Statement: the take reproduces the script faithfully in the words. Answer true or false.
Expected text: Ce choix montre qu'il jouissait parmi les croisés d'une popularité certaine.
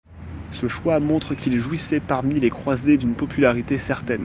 true